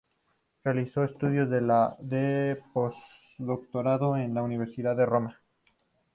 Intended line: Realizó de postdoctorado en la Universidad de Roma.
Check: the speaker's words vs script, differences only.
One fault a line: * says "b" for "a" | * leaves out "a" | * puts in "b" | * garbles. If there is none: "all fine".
* puts in "estudios"